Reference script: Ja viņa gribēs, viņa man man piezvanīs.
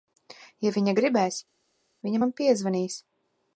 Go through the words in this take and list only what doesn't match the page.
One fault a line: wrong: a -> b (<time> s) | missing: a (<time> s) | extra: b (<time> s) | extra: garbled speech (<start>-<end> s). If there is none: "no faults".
missing: man (2.3 s)